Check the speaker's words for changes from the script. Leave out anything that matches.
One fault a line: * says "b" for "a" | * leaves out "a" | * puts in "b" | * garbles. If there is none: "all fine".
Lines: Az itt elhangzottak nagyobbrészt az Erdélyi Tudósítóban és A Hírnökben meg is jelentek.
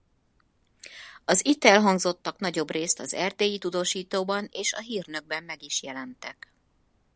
all fine